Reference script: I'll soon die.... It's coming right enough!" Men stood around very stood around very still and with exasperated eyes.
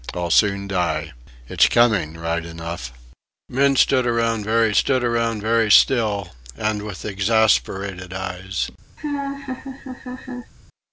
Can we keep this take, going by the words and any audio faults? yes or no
no